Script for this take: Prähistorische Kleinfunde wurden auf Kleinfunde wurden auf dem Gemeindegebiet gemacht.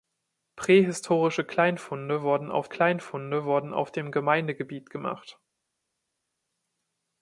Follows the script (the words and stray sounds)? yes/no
yes